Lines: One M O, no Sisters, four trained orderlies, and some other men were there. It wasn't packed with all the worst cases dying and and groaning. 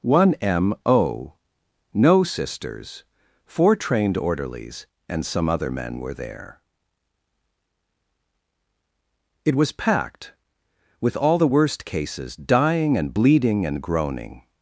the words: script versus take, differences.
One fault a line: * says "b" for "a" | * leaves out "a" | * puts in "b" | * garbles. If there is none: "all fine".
* says "was" for "wasn't"
* puts in "bleeding"